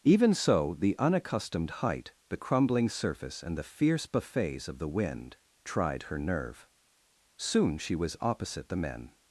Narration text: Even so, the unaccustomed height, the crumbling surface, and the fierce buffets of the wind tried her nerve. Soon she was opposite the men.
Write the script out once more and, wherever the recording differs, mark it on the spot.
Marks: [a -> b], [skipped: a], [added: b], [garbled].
Even so, the unaccustomed height, the crumbling surface, and the fierce buffets of the wind tried her nerve. Soon she was opposite the men.